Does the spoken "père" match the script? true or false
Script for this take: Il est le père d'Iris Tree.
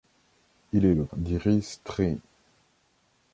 false